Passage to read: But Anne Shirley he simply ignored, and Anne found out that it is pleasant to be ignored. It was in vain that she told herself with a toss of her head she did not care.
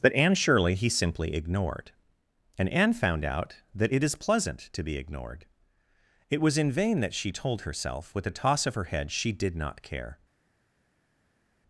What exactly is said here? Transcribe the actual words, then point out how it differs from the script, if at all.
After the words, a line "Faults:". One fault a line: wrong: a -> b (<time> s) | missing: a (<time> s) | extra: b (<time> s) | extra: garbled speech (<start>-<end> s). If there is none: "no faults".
But Anne Shirley he simply ignored, and Anne found out that it is pleasant to be ignored. It was in vain that she told herself with a toss of her head she did not care.
Faults:
no faults